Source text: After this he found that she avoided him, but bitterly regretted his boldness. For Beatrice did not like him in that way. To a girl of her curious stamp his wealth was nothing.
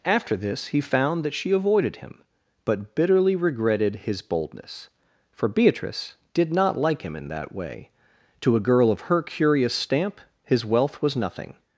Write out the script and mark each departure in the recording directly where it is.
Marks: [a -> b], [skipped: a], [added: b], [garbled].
After this he found that she avoided him, but bitterly regretted his boldness. For Beatrice did not like him in that way. To a girl of her curious stamp his wealth was nothing.